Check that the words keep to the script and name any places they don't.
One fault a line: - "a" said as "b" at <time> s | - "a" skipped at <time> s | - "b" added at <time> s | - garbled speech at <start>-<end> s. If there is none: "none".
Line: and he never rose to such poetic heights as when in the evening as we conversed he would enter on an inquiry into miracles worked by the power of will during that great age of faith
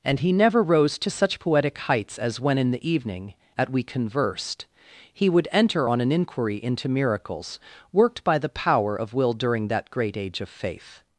- "as" said as "at" at 3.6 s